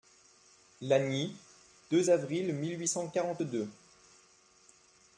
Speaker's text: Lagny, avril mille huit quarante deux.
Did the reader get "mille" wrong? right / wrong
right